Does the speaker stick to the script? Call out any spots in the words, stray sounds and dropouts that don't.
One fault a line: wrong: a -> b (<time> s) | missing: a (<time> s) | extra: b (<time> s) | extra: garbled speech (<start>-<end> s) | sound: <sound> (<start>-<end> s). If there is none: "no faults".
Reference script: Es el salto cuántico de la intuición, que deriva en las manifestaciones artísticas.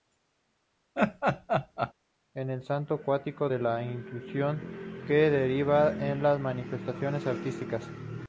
sound: laugh (0.9-1.9 s)